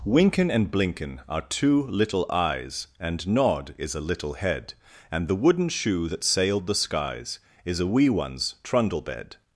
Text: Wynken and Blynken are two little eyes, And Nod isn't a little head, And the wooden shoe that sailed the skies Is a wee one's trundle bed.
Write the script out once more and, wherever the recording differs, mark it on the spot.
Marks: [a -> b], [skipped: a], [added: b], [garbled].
Wynken and Blynken are two little eyes, And Nod [isn't -> is] a little head, And the wooden shoe that sailed the skies Is a wee one's trundle bed.